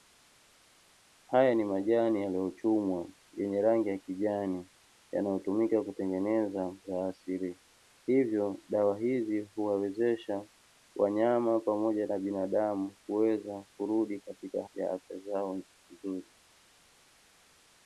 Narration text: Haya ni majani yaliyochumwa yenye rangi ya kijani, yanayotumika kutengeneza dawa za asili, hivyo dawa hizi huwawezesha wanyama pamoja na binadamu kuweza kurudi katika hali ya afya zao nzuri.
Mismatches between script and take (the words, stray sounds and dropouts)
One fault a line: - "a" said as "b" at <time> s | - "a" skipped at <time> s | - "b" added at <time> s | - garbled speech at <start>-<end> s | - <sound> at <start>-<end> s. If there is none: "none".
- "dawa" skipped at 6.8 s
- "hali" skipped at 14.6 s